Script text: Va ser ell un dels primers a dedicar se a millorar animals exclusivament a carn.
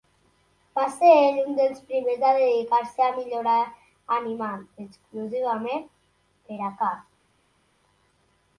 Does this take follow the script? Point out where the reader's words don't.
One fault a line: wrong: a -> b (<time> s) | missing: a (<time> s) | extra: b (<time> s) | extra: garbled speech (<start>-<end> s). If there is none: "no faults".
extra: per (6.5 s)